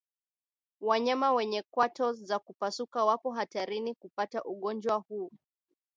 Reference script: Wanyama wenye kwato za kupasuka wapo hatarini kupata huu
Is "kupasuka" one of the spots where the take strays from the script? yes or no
no